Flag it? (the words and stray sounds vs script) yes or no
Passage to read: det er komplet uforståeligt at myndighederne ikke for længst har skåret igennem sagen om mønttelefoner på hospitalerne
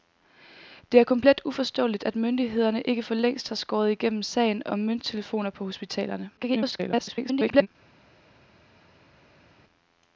yes